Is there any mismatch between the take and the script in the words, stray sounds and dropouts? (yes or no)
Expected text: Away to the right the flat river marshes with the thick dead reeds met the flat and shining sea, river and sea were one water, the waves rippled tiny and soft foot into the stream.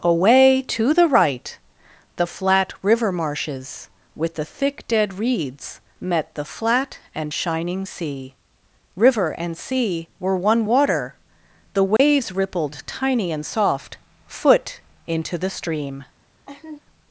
yes